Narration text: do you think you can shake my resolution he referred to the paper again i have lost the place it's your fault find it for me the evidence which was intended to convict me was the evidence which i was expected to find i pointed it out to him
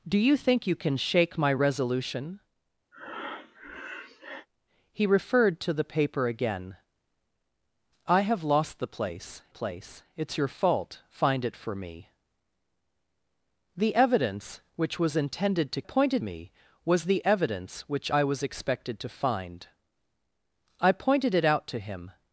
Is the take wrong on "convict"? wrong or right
wrong